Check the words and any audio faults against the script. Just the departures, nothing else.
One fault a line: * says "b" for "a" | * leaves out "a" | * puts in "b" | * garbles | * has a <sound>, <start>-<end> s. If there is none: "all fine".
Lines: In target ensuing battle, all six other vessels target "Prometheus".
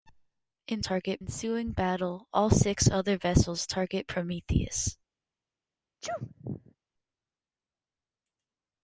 * has a sneeze, 6.0-6.8 s